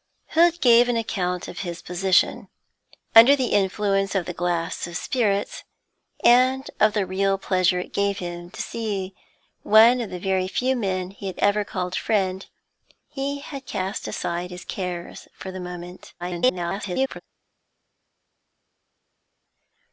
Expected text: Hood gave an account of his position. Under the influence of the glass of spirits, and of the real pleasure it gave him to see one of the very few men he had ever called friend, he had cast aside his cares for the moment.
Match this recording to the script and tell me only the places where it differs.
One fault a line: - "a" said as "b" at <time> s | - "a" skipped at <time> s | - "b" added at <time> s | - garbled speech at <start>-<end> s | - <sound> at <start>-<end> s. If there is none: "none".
- garbled speech at 16.2-17.2 s